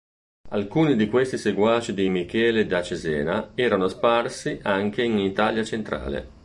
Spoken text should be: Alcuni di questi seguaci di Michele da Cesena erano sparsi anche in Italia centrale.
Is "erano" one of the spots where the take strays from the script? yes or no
no